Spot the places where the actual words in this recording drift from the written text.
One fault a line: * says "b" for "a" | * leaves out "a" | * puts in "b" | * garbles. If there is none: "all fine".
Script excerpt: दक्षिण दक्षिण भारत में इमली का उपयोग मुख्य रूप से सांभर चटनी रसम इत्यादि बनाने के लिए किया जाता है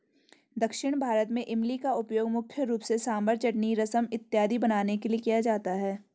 * leaves out "दक्षिण"